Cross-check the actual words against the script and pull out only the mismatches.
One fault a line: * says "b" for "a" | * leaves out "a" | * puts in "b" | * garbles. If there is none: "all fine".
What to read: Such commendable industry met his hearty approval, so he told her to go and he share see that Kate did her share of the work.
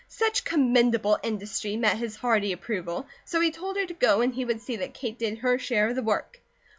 * says "would" for "share"